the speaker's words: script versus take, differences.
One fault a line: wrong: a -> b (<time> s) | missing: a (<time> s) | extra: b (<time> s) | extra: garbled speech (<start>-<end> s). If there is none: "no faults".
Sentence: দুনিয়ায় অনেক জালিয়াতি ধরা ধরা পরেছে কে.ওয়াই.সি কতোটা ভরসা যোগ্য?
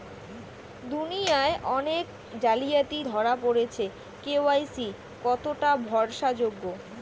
missing: ধরা (3.3 s)